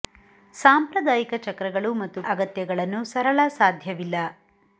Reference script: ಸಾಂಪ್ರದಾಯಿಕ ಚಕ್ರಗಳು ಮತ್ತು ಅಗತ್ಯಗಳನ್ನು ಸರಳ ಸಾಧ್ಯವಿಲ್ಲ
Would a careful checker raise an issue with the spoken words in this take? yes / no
no